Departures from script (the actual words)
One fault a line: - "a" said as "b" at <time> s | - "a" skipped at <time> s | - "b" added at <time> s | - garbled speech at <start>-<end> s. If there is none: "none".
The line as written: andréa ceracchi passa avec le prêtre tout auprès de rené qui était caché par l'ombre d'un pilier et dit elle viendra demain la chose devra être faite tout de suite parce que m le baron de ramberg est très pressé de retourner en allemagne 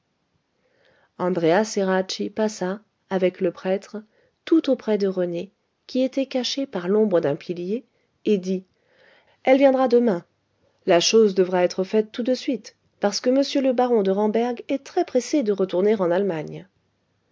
none